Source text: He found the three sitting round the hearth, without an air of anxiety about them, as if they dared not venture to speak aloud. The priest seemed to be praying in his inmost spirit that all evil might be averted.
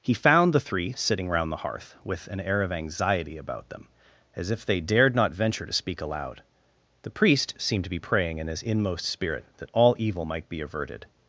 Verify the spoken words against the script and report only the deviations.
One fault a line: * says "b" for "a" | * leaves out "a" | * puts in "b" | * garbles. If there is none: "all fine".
* says "with" for "without"